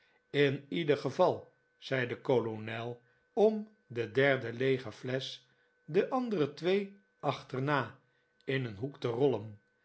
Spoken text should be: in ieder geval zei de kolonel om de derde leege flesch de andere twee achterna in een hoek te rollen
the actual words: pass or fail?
pass